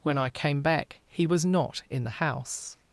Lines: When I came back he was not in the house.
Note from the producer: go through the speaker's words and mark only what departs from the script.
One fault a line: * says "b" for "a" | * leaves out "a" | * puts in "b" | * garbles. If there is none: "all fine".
all fine